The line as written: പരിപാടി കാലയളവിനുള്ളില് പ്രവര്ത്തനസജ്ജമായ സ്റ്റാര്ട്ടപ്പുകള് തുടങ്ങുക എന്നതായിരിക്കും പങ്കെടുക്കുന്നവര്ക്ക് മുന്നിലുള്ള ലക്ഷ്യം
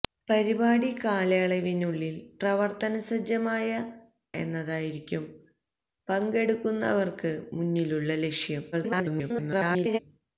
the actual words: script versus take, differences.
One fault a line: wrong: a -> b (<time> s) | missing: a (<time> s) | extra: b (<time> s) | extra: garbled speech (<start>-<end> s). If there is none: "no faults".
missing: സ്റ്റാര്ട്ടപ്പുകള് തുടങ്ങുക (3.7 s)
extra: garbled speech (8.7-10.0 s)